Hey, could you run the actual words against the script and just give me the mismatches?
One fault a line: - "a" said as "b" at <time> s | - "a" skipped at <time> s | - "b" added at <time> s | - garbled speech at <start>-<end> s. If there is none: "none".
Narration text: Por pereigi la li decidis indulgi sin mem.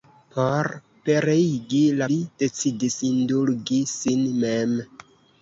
none